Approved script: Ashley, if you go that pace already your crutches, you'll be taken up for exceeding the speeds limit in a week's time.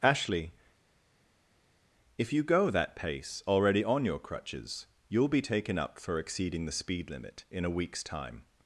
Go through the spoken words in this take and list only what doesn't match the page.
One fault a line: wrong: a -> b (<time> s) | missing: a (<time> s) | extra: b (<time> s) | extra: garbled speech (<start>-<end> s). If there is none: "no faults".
extra: on (3.8 s)
wrong: speeds -> speed (6.7 s)